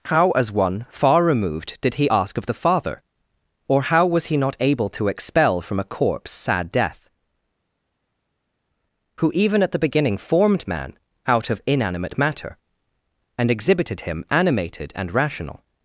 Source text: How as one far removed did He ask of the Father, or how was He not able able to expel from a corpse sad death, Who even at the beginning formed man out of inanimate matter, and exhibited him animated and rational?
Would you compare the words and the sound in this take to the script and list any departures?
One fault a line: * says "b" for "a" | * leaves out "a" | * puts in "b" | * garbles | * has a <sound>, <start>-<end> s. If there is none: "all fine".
* leaves out "able"